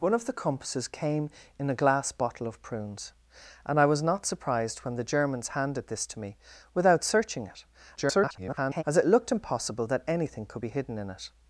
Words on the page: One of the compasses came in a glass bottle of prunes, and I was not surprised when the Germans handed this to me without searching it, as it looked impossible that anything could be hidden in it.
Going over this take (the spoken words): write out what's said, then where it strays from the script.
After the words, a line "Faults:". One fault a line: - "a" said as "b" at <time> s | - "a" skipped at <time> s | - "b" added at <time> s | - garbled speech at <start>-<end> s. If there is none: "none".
One of the compasses came in a glass bottle of prunes, and I was not surprised when the Germans handed this to me without searching it, [garbled] as it looked impossible that anything could be hidden in it.
Faults:
- garbled speech at 8.0-8.8 s